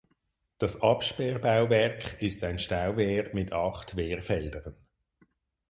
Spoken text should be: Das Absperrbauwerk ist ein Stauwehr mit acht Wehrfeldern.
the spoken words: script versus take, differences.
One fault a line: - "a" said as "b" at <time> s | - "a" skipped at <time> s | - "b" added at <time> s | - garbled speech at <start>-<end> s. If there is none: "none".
none